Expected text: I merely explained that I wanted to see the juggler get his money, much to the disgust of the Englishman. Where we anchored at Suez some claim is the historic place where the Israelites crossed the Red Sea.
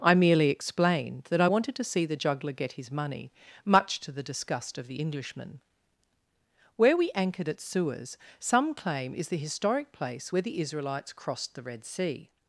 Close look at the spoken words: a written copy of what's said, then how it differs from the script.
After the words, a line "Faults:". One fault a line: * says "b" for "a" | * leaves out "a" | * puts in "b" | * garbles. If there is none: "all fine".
I merely explained that I wanted to see the juggler get his money, much to the disgust of the Englishman. Where we anchored at Suez some claim is the historic place where the Israelites crossed the Red Sea.
Faults:
all fine